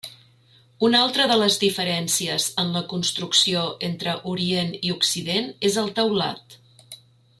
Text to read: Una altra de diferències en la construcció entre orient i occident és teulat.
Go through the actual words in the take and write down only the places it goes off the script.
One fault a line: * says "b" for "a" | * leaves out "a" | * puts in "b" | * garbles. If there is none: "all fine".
* puts in "les"
* puts in "el"